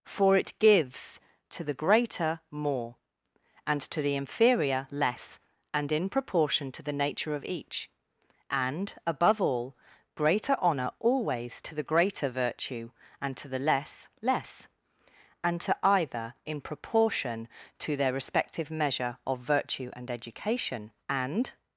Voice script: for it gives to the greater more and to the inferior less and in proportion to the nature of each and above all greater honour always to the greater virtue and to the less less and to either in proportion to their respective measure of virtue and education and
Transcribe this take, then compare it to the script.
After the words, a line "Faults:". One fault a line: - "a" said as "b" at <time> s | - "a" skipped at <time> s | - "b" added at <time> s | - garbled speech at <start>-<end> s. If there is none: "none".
for it gives to the greater more and to the inferior less and in proportion to the nature of each and above all greater honour always to the greater virtue and to the less less and to either in proportion to their respective measure of virtue and education and
Faults:
none